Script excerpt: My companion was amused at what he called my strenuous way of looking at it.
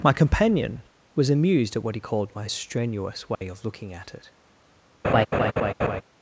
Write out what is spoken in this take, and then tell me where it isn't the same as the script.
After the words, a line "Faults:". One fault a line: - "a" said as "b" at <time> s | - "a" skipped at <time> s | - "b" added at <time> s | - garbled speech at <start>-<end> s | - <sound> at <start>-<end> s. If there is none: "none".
My companion was amused at what he called my strenuous way of looking at it.
Faults:
- dropout at 3.3-3.4 s
- laugh at 5.0-6.0 s